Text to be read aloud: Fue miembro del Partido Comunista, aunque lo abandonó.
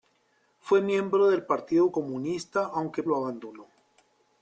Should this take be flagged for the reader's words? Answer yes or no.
no